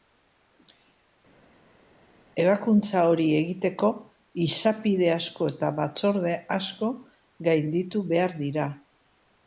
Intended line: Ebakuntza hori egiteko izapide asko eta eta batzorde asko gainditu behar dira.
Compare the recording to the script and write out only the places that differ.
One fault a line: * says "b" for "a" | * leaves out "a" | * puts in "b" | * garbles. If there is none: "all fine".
* leaves out "eta"